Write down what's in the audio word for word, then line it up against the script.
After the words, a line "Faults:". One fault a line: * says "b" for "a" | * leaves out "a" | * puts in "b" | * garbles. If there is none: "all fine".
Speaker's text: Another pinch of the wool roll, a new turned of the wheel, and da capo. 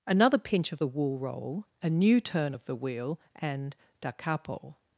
Another pinch of the wool roll, a new turn of the wheel, and da capo.
Faults:
* says "turn" for "turned"